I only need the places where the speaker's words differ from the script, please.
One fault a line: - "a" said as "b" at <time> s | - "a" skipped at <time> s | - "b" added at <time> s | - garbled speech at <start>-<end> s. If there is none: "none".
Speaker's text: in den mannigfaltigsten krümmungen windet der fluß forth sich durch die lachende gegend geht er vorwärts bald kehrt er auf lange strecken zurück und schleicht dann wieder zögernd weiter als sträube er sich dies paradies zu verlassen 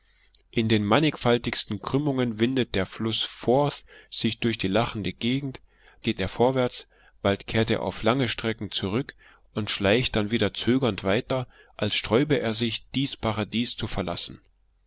none